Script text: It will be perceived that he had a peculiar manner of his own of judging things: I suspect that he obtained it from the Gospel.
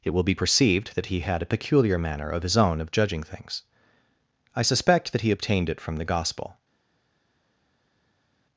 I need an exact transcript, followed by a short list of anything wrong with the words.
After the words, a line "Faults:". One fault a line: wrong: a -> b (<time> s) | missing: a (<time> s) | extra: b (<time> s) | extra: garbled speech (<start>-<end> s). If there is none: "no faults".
It will be perceived that he had a peculiar manner of his own of judging things: I suspect that he obtained it from the Gospel.
Faults:
no faults